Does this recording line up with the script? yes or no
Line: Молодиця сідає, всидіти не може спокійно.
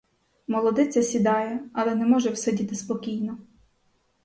no